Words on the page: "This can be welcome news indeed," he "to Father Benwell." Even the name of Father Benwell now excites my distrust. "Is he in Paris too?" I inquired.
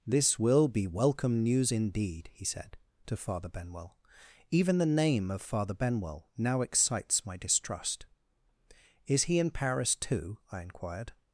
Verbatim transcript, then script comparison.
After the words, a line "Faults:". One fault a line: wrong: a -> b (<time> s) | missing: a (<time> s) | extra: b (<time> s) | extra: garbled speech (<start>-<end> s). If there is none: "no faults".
"This will be welcome news indeed," he said, "to Father Benwell." Even the name of Father Benwell now excites my distrust. "Is he in Paris too?" I inquired.
Faults:
wrong: can -> will (0.4 s)
extra: said (2.4 s)